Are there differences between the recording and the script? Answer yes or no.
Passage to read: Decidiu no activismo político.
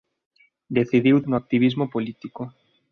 no